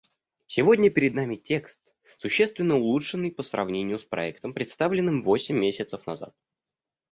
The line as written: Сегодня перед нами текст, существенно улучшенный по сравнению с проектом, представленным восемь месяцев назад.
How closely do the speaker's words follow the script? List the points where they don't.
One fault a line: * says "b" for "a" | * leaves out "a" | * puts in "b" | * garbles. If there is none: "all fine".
all fine